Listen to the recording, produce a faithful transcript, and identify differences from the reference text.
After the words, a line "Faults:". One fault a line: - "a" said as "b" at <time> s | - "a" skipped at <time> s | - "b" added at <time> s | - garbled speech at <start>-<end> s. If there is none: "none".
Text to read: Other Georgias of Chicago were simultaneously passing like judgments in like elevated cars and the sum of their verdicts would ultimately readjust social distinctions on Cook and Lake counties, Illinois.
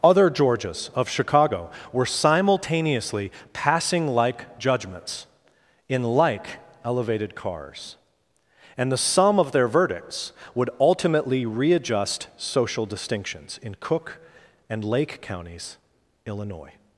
Other Georgias of Chicago were simultaneously passing like judgments in like elevated cars and the sum of their verdicts would ultimately readjust social distinctions in Cook and Lake counties, Illinois.
Faults:
- "on" said as "in" at 13.6 s